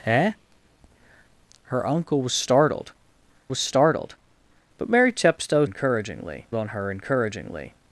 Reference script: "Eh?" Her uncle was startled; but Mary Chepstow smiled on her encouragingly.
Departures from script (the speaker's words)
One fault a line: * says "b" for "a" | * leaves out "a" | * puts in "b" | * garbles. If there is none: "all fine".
* puts in "was startled"
* says "encouragingly" for "smiled"